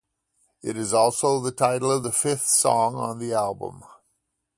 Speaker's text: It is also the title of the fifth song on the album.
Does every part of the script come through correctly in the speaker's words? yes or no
yes